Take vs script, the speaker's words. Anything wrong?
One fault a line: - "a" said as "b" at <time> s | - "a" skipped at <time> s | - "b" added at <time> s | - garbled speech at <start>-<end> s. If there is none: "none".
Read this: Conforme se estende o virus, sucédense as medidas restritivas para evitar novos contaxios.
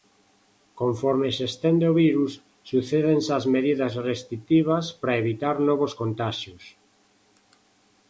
none